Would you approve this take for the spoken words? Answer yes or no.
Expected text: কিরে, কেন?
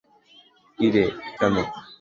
yes